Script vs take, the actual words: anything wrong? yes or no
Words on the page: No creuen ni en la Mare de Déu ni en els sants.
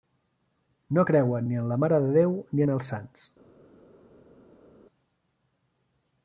no